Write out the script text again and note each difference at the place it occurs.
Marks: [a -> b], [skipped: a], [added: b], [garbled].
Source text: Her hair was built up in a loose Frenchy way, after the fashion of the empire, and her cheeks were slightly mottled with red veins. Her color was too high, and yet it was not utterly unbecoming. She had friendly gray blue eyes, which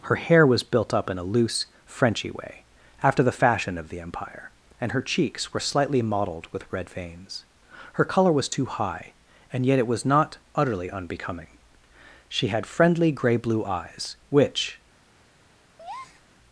Her hair was built up in a loose Frenchy way, after the fashion of the empire, and her cheeks were slightly mottled with red veins. Her color was too high, and yet it was not utterly unbecoming. She had friendly gray blue eyes, which